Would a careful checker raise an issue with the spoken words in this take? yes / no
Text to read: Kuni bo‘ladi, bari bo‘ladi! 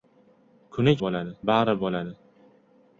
no